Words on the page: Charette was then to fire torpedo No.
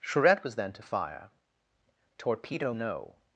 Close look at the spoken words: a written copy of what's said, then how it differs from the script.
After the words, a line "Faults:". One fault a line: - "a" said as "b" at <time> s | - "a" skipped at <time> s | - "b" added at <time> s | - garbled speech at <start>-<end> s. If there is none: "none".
Charette was then to fire torpedo No.
Faults:
none